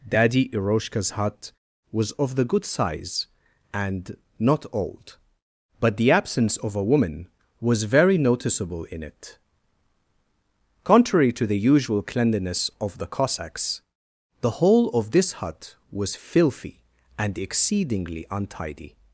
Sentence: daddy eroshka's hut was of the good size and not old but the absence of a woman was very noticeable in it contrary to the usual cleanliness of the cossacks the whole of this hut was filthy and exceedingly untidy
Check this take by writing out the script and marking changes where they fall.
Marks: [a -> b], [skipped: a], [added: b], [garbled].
daddy eroshka's hut was of the good size and not old but the absence of a woman was very noticeable in it contrary to the usual cleanliness of the cossacks the whole of this hut was filthy and exceedingly untidy